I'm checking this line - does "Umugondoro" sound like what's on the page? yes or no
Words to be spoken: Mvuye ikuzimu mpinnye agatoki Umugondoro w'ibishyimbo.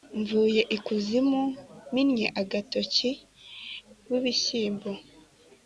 no